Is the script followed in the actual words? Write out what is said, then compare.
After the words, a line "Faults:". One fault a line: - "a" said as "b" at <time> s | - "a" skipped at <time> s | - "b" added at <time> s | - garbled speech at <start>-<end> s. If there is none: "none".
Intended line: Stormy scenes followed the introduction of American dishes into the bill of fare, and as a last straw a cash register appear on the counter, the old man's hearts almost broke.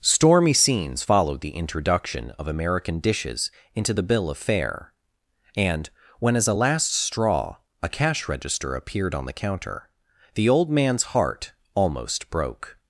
Stormy scenes followed the introduction of American dishes into the bill of fare, and when as a last straw a cash register appeared on the counter, the old man's heart almost broke.
Faults:
- "when" added at 6.2 s
- "appear" said as "appeared" at 8.8 s
- "hearts" said as "heart" at 11.0 s